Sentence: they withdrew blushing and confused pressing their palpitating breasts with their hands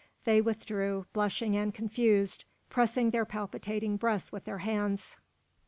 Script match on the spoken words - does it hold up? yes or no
yes